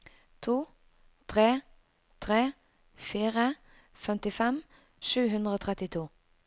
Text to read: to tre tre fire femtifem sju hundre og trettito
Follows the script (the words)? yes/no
yes